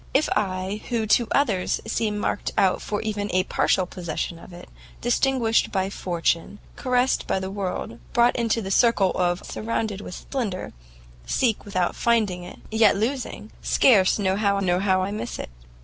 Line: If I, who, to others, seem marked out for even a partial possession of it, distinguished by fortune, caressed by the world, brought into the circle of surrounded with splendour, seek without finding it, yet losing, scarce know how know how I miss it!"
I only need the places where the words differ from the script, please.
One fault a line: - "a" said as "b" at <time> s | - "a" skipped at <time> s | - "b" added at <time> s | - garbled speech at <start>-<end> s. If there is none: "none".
none